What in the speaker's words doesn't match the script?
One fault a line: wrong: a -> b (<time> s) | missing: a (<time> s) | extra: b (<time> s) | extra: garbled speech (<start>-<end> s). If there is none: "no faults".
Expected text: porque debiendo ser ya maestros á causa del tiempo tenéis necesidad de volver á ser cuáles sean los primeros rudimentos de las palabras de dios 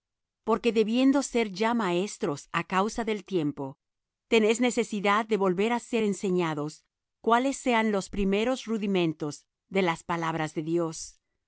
extra: enseñados (6.0 s)